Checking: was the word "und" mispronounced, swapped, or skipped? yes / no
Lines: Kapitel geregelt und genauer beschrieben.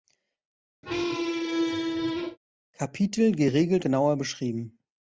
yes